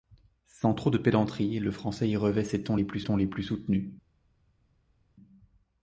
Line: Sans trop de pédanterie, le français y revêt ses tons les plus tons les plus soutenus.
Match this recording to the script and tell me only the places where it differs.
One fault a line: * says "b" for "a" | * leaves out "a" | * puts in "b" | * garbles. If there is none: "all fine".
all fine